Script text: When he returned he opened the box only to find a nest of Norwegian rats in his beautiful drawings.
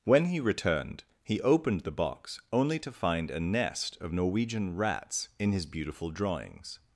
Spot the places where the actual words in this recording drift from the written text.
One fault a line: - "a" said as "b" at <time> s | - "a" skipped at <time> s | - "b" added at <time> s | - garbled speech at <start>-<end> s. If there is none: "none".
none